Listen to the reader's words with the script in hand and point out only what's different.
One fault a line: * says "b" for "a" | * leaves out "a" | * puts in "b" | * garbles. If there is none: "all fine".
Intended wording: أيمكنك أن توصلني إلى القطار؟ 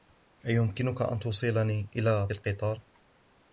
all fine